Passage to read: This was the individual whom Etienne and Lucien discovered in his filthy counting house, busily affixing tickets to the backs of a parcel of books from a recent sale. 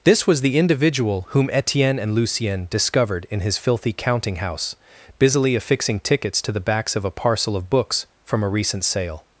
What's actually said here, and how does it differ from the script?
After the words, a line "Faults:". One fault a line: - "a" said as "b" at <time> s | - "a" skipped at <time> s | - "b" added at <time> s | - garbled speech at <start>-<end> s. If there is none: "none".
This was the individual whom Etienne and Lucien discovered in his filthy counting house, busily affixing tickets to the backs of a parcel of books from a recent sale.
Faults:
none